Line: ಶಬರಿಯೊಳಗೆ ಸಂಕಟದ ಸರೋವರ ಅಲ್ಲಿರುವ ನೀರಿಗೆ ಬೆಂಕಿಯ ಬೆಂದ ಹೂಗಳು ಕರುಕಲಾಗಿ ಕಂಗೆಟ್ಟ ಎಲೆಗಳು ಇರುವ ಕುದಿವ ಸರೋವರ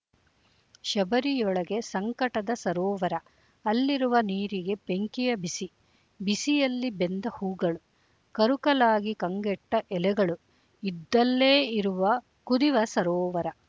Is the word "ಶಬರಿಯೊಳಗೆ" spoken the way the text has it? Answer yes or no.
yes